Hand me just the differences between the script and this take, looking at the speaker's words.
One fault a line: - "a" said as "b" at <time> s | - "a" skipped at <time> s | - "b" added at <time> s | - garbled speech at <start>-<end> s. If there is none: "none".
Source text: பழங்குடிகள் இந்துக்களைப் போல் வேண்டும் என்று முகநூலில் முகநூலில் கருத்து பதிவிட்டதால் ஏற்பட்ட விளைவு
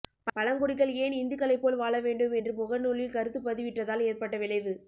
- "ஏன்" added at 1.0 s
- "வாழ" added at 1.8 s
- "முகநூலில்" skipped at 3.1 s